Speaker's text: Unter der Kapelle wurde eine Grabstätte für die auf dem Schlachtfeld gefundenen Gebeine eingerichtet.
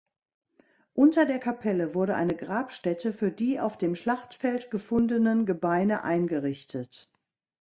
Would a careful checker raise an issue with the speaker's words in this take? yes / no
no